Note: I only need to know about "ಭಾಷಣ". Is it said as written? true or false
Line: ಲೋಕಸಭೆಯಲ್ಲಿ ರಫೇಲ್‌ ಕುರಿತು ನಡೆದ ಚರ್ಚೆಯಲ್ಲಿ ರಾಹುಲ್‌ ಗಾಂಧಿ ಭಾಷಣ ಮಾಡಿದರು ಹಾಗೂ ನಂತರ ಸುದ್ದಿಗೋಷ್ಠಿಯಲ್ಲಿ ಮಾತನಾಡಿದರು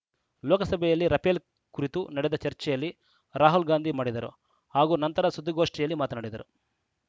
false